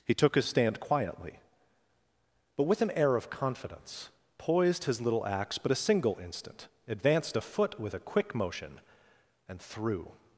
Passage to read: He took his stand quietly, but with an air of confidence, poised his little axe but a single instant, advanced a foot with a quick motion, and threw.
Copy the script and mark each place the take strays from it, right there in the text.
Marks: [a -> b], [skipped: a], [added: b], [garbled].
He took his stand quietly, but with an air of confidence, poised his little axe but a single instant, advanced a foot with a quick motion, and threw.